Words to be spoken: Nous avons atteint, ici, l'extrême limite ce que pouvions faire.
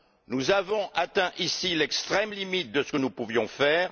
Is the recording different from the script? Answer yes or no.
yes